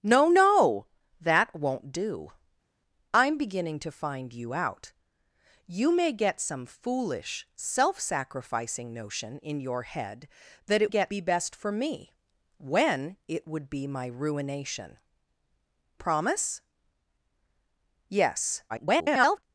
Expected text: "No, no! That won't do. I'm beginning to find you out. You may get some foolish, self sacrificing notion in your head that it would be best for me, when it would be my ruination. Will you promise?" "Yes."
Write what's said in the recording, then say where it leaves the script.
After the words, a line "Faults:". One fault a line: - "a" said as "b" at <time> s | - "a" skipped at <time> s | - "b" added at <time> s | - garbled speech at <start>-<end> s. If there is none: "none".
"No, no! That won't do. I'm beginning to find you out. You may get some foolish, self sacrificing notion in your head that it get be best for me, when it would be my ruination. Promise?" "Yes." [garbled]
Faults:
- "would" said as "get" at 10.9 s
- "Will you" skipped at 15.0 s
- garbled speech at 18.7-19.4 s